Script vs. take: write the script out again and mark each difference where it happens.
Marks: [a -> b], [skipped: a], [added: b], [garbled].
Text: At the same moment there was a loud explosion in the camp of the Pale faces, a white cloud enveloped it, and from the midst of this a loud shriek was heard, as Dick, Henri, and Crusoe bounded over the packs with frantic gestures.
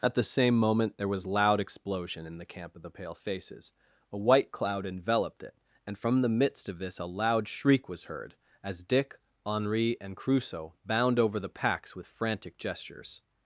At the same moment there was [skipped: a] loud explosion in the camp of the Pale faces, a white cloud enveloped it, and from the midst of this a loud shriek was heard, as Dick, Henri, and Crusoe [bounded -> bound] over the packs with frantic gestures.